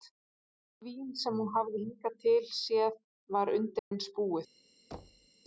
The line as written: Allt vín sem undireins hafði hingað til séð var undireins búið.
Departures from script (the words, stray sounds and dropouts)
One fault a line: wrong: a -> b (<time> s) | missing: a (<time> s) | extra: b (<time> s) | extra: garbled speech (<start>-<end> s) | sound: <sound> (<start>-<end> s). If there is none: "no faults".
wrong: undireins -> hún (1.4 s)
sound: dropout (3.8-3.9 s)
sound: thud (4.9-5.3 s)